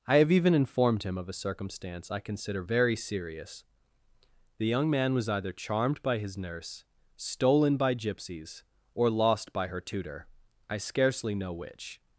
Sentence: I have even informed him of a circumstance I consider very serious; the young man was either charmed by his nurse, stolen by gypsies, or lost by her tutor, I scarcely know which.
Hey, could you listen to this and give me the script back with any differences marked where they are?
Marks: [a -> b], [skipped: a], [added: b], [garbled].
I have even informed him of a circumstance I consider very serious; the young man was either charmed by his nurse, stolen by gypsies, or lost by her tutor, I scarcely know which.